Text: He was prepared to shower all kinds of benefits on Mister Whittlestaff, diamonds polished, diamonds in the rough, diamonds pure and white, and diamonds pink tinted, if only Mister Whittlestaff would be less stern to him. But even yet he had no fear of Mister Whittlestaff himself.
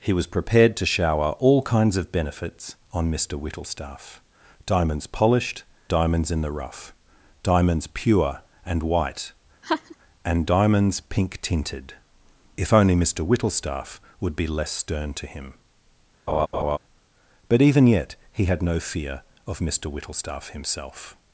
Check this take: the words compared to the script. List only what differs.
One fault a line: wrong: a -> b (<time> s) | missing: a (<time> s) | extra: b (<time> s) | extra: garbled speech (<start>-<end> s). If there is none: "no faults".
no faults